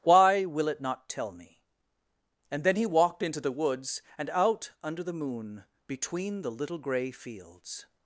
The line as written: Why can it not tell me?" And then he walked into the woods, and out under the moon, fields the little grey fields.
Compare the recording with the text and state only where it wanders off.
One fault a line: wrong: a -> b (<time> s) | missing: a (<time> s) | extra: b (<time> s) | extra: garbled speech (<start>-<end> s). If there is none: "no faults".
wrong: can -> will (0.5 s)
wrong: fields -> between (5.9 s)